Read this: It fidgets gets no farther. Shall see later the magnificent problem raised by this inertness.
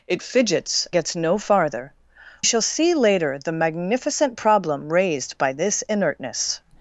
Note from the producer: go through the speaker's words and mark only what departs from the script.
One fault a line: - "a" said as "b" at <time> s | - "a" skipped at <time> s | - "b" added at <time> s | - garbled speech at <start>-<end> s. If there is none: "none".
none